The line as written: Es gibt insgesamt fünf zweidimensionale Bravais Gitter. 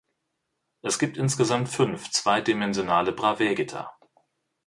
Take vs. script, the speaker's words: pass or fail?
pass